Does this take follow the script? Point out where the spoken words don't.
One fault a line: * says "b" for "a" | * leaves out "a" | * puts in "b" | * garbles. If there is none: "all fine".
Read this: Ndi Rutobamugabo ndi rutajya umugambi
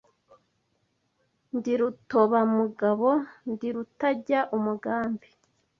all fine